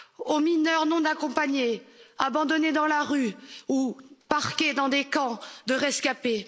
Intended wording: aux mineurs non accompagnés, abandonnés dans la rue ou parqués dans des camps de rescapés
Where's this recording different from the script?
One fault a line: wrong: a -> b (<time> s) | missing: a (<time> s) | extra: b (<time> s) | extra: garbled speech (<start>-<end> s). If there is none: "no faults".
no faults